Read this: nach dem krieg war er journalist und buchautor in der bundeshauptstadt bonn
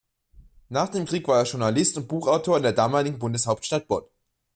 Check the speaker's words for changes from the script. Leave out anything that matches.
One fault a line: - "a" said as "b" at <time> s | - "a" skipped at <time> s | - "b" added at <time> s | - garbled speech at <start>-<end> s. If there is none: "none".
- "damaligen" added at 2.7 s